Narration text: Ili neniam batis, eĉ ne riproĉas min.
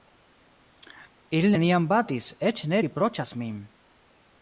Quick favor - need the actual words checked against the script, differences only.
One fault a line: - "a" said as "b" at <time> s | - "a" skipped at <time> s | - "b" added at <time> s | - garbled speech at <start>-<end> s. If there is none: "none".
none